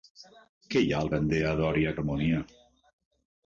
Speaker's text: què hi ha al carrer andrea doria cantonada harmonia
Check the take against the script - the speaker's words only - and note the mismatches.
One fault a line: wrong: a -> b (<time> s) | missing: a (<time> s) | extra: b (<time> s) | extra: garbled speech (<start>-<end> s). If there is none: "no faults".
missing: carrer (1.1 s)
missing: cantonada (2.0 s)